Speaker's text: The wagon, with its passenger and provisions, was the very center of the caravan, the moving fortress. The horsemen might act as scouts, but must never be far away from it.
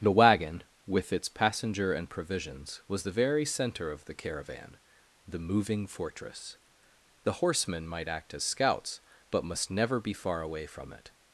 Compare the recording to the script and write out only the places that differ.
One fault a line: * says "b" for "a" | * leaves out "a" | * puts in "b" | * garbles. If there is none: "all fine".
all fine